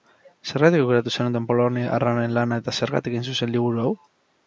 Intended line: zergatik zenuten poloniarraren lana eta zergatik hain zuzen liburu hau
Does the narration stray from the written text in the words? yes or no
yes